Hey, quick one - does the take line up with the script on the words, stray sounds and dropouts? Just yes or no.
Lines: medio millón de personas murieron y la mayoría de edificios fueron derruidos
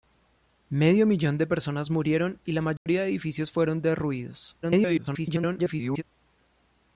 no